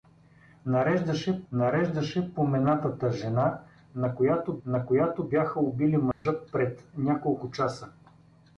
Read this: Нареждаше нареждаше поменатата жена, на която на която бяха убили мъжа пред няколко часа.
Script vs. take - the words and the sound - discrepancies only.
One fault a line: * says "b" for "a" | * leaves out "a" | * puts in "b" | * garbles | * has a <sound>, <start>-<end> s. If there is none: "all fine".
* has a dropout, 6.1-6.3 s